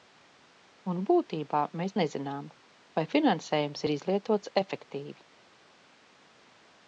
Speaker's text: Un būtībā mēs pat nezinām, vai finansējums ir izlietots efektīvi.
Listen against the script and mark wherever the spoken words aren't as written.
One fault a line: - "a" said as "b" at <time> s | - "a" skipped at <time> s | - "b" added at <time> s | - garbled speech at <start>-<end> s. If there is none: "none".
- "pat" skipped at 1.9 s